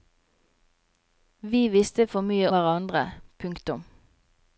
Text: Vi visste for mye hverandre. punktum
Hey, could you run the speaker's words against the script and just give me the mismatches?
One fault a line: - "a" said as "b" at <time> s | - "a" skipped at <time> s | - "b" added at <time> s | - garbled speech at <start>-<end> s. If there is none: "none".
none